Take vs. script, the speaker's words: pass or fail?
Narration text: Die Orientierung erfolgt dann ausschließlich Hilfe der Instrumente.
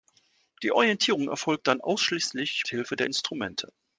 pass